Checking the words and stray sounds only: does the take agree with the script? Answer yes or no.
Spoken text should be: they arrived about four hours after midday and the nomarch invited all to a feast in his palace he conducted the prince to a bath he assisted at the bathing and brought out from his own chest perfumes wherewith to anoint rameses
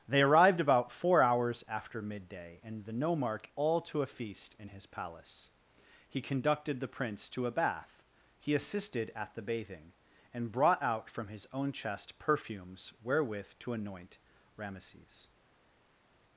no